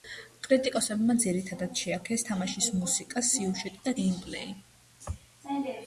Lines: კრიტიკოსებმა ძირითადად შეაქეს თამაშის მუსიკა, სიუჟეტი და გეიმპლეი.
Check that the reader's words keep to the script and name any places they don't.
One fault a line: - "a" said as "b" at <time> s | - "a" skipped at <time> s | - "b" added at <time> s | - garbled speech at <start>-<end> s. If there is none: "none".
none